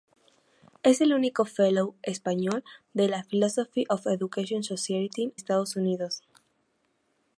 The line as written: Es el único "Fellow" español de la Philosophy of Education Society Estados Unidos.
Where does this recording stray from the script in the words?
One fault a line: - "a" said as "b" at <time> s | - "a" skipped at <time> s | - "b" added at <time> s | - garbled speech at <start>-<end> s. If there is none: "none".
none